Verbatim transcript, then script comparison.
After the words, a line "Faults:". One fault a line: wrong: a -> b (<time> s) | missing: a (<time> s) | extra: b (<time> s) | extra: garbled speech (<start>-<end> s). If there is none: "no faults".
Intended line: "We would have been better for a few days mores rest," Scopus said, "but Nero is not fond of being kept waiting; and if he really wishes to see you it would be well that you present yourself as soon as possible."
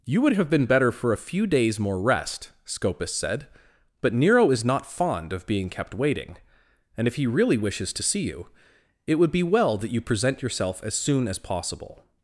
"You would have been better for a few days more rest," Scopus said, "but Nero is not fond of being kept waiting; and if he really wishes to see you it would be well that you present yourself as soon as possible."
Faults:
wrong: We -> You (0.0 s)
wrong: mores -> more (1.8 s)